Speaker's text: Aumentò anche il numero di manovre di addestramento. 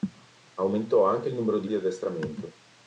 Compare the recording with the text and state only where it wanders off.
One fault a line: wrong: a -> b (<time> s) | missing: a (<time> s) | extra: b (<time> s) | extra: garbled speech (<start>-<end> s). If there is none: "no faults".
missing: manovre (1.7 s)